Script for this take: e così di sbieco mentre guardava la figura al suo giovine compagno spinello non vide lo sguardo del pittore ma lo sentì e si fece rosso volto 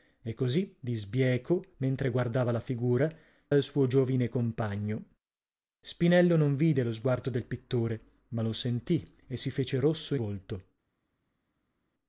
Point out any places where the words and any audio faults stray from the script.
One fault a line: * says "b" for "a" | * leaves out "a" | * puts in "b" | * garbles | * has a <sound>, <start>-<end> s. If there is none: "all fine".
all fine